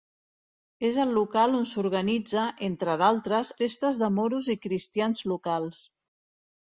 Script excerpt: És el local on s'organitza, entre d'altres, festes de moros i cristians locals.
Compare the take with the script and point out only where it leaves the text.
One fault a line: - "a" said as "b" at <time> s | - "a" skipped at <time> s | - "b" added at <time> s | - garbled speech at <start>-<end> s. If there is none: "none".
none